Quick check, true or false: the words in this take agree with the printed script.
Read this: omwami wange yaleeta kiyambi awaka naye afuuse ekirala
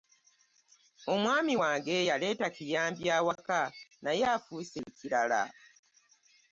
true